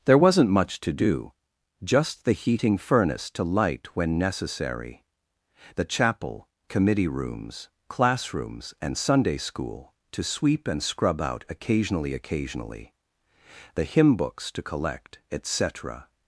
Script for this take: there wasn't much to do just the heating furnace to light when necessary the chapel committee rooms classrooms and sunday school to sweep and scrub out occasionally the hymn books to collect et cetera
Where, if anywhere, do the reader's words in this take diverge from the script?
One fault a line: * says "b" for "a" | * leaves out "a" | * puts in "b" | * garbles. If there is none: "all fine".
* puts in "occasionally"